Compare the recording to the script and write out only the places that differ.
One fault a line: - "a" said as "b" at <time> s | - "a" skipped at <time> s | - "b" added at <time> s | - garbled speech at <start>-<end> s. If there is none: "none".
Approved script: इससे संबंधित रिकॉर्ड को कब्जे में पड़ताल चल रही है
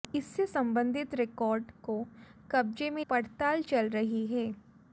none